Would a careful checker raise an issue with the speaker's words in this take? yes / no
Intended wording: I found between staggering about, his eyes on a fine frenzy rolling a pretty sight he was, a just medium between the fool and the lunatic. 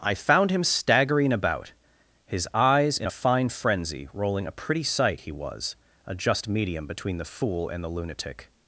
yes